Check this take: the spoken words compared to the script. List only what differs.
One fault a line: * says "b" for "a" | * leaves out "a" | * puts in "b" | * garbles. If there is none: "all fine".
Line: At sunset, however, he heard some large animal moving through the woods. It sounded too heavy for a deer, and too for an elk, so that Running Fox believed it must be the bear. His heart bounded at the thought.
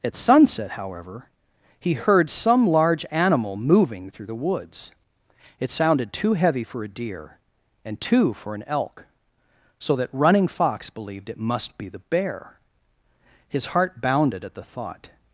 all fine